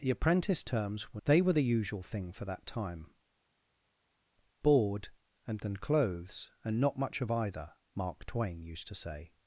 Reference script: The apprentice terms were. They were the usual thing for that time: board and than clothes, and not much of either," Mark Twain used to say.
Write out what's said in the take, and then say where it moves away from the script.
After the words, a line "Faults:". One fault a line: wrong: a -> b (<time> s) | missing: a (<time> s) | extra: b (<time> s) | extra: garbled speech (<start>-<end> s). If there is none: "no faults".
The apprentice terms were. They were the usual thing for that time: board and than clothes, and not much of either," Mark Twain used to say.
Faults:
no faults